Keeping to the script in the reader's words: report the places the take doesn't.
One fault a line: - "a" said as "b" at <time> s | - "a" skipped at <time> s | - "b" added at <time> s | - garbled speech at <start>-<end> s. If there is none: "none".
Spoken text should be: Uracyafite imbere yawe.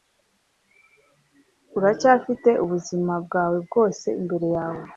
- "ubuzima bwawe bwose" added at 2.6 s